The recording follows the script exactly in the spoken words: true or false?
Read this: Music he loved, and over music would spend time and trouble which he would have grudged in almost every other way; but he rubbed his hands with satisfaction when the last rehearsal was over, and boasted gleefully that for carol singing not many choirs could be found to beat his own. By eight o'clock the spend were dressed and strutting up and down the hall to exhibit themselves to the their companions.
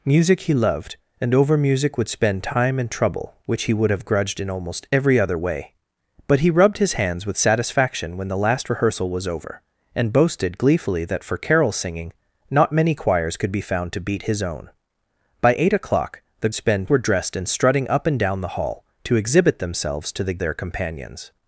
true